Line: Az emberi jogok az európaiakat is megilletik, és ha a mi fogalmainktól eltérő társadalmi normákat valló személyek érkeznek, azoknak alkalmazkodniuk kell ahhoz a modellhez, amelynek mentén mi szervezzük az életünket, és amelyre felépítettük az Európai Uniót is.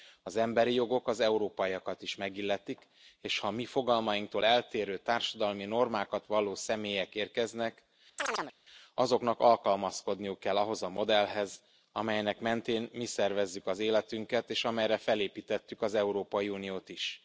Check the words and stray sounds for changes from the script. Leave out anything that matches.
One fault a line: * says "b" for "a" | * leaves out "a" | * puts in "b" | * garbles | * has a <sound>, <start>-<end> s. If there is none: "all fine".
* has a chirp, 8.2-8.5 s